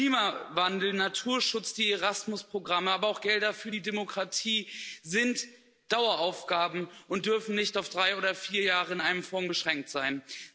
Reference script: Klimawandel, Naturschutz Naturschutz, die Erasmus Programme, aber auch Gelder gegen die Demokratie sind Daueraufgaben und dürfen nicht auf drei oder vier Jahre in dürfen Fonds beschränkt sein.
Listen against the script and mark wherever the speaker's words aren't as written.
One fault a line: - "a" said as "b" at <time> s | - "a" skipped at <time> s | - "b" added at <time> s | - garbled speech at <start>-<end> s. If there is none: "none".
- "Naturschutz" skipped at 1.8 s
- "gegen" said as "für" at 3.5 s
- "dürfen" said as "einem" at 9.0 s